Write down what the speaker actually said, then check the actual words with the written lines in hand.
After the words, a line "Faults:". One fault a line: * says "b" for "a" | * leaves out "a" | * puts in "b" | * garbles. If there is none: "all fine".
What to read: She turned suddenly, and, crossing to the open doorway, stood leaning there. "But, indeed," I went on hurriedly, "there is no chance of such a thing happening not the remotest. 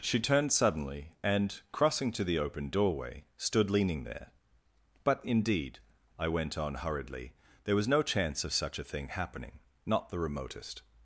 She turned suddenly, and, crossing to the open doorway, stood leaning there. "But, indeed," I went on hurriedly, "there was no chance of such a thing happening not the remotest.
Faults:
* says "was" for "is"